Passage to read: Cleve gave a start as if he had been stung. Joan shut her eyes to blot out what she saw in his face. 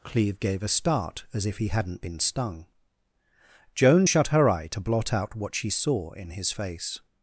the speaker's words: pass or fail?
fail